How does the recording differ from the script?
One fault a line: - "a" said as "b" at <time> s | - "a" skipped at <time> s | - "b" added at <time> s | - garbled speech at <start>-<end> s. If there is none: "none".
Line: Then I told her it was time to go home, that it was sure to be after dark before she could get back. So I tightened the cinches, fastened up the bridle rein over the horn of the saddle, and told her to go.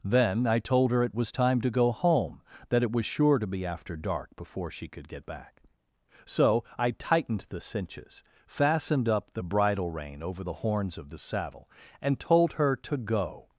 - "horn" said as "horns" at 10.5 s